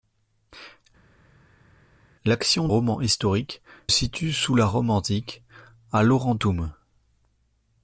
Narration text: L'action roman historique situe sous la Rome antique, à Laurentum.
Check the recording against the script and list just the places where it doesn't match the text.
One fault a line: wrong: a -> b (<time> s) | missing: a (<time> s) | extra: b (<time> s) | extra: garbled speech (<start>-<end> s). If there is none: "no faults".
no faults